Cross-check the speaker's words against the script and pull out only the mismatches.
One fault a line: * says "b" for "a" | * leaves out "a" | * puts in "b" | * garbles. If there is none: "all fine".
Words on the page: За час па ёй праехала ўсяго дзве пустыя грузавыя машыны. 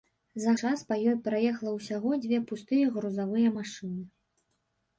all fine